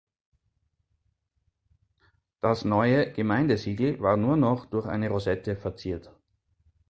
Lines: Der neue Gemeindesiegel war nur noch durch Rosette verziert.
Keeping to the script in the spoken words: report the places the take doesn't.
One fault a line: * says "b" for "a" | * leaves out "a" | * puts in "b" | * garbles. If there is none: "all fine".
* says "Das" for "Der"
* puts in "eine"